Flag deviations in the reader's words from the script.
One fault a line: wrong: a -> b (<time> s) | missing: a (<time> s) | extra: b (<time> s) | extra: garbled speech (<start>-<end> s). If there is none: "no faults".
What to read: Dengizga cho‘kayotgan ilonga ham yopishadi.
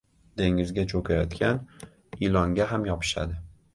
no faults